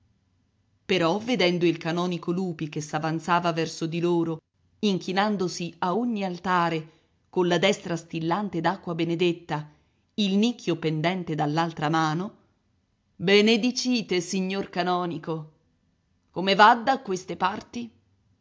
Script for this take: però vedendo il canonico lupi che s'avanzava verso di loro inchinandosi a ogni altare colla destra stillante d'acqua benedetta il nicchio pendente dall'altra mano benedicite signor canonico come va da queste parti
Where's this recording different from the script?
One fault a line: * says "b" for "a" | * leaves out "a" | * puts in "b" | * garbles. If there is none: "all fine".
all fine